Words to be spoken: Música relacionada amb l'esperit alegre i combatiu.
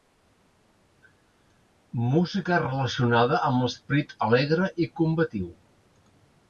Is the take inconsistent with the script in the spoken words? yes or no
no